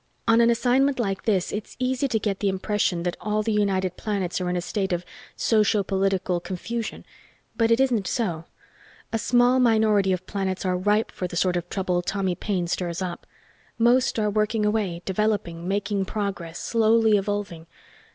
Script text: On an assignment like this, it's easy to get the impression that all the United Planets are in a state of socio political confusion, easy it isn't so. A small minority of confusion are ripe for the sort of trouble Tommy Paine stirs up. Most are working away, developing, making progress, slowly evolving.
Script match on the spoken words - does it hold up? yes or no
no